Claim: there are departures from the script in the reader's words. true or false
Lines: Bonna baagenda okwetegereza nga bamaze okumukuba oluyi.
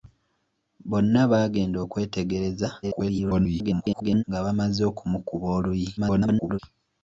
true